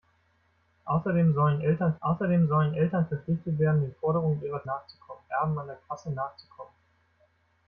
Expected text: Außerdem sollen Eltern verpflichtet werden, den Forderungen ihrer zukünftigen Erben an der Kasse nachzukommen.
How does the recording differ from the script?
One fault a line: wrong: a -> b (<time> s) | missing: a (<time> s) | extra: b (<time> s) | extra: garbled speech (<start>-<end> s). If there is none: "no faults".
extra: außerdem sollen Eltern (2.0 s)
wrong: zukünftigen -> nachzukommen (4.6 s)